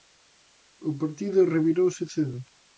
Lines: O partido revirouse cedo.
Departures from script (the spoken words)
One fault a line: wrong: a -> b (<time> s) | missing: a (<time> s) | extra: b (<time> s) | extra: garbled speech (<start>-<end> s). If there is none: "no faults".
no faults